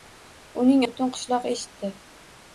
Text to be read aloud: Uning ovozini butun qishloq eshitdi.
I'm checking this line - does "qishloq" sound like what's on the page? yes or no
yes